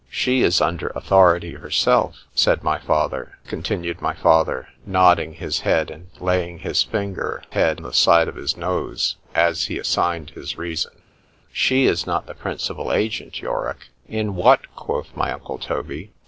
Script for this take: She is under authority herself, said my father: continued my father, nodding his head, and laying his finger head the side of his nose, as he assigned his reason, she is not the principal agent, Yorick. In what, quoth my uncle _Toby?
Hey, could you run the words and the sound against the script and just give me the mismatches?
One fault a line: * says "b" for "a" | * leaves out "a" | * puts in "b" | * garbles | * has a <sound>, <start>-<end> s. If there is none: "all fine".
all fine